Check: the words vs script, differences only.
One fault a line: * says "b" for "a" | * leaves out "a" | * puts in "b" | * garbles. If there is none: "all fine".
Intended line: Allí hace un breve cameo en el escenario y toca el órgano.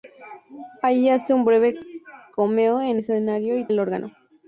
* leaves out "el"
* leaves out "toca"